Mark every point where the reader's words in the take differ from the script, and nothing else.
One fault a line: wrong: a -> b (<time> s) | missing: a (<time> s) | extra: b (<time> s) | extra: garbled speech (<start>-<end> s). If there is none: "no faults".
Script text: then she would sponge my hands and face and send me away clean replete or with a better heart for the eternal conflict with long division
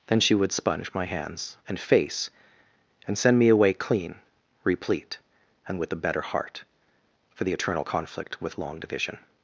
wrong: or -> and (5.7 s)